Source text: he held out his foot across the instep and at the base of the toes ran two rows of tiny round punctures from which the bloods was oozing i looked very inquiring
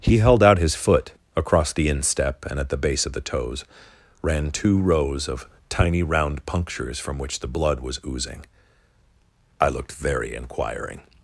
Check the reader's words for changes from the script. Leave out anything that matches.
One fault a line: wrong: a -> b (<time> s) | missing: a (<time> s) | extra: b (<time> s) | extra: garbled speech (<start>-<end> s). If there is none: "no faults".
wrong: bloods -> blood (7.5 s)